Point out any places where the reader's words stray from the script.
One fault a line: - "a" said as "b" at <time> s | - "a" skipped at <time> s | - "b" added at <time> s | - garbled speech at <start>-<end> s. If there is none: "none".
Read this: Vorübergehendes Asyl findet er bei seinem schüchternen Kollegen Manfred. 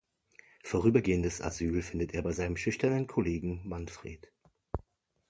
none